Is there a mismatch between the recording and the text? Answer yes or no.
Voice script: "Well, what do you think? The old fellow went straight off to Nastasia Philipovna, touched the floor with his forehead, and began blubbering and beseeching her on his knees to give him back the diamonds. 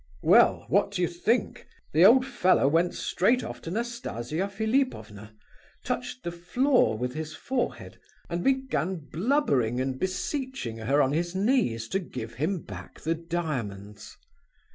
no